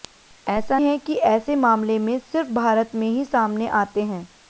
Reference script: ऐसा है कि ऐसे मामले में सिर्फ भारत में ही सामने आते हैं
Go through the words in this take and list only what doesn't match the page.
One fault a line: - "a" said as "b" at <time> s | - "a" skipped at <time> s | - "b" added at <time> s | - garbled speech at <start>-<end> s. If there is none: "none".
none